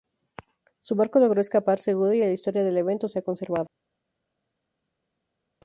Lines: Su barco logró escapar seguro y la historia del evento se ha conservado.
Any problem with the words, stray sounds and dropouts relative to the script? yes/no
no